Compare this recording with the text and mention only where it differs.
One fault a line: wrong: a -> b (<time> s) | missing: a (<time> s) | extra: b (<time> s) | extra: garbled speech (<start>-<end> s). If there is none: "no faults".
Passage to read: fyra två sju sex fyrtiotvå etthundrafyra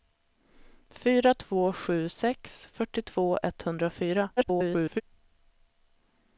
extra: garbled speech (4.4-5.0 s)